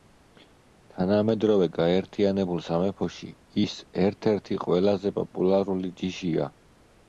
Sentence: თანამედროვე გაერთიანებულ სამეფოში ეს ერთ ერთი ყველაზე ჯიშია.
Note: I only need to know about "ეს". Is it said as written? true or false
false